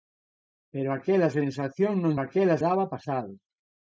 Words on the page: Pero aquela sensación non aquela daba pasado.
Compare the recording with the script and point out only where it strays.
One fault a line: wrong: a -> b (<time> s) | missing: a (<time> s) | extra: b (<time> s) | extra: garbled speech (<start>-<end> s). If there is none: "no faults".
no faults